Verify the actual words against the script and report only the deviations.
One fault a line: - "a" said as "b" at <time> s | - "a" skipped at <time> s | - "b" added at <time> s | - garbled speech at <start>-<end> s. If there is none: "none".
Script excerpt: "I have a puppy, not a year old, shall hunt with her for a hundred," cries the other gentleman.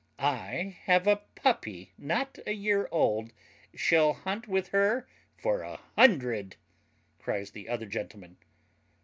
none